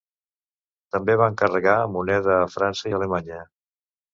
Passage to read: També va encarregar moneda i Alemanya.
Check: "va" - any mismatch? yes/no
no